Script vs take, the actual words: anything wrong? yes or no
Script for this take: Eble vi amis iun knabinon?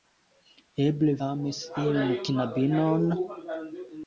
yes